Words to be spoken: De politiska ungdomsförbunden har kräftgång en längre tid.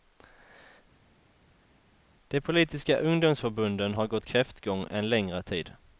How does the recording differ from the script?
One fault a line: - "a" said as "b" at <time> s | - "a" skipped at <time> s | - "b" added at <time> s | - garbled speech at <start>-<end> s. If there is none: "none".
- "gått" added at 4.1 s